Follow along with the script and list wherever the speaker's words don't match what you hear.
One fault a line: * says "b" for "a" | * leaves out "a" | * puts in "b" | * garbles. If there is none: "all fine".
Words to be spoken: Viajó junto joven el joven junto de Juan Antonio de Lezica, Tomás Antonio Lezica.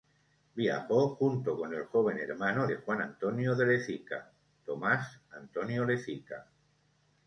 * says "con" for "joven"
* says "hermano" for "junto"